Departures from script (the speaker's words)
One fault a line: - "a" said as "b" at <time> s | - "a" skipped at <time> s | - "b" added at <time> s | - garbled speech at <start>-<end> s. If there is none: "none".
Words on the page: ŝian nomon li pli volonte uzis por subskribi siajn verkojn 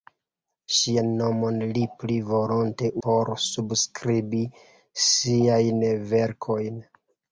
- "uzis" skipped at 2.9 s